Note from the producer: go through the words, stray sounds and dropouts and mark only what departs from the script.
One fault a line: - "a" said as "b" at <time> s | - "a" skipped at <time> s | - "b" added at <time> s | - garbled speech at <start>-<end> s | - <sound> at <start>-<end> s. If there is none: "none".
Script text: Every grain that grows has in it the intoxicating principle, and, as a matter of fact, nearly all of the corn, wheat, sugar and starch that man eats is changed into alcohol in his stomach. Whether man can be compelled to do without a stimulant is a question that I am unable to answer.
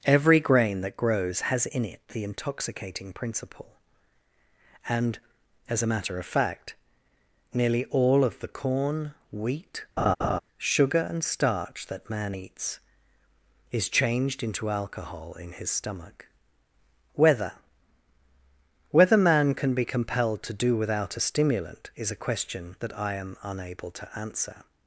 - laugh at 10.0-10.4 s
- "Whether" added at 18.9 s